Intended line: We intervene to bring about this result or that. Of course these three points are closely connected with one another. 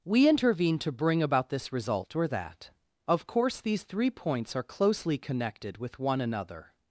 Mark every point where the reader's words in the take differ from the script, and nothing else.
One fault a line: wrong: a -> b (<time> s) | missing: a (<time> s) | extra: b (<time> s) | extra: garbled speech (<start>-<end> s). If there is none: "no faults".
no faults